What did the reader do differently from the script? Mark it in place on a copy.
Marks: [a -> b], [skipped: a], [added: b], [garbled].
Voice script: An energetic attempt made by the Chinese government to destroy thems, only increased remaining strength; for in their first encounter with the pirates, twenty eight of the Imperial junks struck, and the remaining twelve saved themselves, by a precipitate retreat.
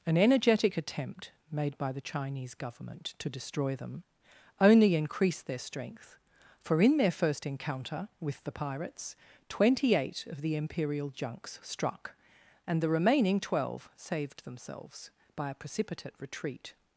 An energetic attempt made by the Chinese government to destroy [thems, -> them] only increased [remaining -> their] strength; for in their first encounter with the pirates, twenty eight of the Imperial junks struck, and the remaining twelve saved themselves, by a precipitate retreat.